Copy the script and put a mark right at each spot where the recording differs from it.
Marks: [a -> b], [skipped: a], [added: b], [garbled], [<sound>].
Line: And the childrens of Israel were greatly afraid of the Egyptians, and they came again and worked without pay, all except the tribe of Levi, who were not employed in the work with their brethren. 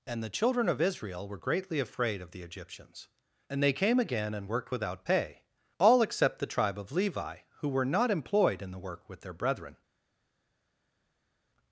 And the [childrens -> children] of Israel were greatly afraid of the Egyptians, and they came again and worked without pay, all except the tribe of Levi, who were not employed in the work with their brethren.